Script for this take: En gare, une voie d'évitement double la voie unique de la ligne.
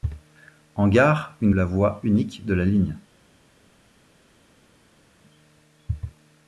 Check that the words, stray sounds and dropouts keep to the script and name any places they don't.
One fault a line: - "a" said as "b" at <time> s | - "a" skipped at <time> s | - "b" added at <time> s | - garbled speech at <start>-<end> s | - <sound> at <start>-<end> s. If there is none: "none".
- "voie d'évitement double" skipped at 1.5 s